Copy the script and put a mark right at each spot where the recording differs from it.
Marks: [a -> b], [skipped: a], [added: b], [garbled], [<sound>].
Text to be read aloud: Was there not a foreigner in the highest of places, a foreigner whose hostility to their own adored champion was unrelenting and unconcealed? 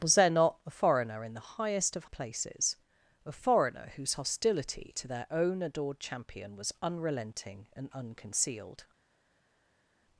Was there not a foreigner in the highest of places, a foreigner whose hostility to their own adored champion was unrelenting and unconcealed?